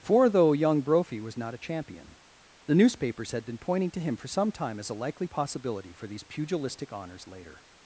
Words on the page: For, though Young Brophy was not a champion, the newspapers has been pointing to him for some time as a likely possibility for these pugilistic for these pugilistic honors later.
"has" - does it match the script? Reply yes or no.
no